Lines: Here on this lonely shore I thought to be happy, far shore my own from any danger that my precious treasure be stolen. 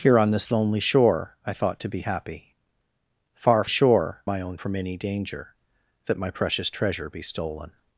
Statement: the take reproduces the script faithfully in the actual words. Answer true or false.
true